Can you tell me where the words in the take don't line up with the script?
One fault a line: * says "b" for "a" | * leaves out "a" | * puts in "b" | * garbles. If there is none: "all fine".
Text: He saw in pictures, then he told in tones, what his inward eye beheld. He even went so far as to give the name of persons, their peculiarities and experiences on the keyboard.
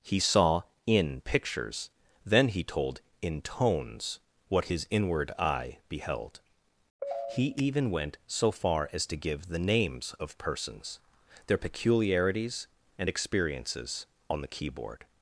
* says "names" for "name"